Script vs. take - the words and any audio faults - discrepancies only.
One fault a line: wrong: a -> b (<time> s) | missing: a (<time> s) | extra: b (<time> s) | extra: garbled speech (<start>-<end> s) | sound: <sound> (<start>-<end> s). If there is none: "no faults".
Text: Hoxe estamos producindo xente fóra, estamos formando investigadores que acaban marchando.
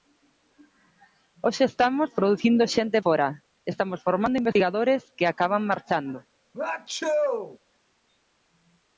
sound: sneeze (6.5-7.6 s)